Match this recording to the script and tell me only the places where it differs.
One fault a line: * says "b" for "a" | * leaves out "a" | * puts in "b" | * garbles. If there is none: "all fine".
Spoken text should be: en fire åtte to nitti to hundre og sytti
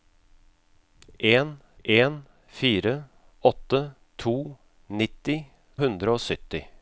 * puts in "en"
* leaves out "to"